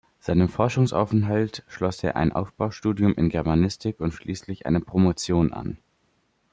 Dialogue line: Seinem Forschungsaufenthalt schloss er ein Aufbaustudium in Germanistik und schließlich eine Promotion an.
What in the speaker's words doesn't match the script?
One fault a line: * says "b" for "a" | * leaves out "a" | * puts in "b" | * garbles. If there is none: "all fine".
all fine